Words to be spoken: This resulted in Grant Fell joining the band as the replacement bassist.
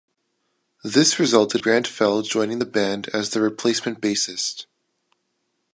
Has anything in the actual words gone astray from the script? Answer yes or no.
yes